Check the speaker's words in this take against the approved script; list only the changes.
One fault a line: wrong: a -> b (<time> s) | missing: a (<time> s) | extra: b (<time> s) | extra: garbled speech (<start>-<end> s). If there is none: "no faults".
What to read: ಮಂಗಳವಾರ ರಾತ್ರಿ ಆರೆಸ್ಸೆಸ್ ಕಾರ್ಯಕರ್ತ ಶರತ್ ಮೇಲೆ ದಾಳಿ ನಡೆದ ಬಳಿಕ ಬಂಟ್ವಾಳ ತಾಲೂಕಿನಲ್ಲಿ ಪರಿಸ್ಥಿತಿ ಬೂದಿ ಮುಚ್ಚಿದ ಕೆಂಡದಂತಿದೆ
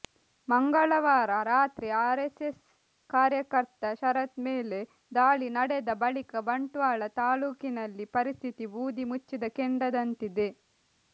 no faults